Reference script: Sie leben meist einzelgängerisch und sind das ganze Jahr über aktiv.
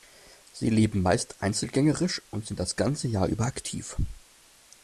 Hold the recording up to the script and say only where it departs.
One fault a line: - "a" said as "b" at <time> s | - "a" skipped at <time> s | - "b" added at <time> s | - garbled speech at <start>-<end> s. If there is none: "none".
none